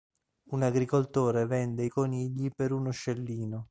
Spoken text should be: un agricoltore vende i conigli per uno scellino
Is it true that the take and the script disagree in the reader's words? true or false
false